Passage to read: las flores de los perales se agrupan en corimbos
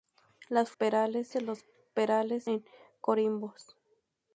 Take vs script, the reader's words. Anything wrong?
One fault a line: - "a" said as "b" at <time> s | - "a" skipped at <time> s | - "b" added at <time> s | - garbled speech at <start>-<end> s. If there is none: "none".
- "flores" said as "perales" at 0.8 s
- "se agrupan" skipped at 2.5 s